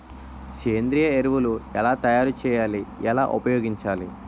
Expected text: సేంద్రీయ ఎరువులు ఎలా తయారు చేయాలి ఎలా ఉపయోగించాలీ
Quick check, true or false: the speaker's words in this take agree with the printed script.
true